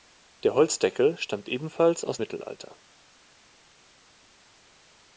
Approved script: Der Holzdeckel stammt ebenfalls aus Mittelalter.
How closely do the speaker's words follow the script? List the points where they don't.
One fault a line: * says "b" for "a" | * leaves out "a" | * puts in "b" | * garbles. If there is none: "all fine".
all fine